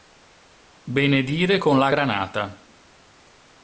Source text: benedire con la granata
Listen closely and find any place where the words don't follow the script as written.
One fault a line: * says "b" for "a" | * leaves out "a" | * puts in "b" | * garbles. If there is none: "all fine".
all fine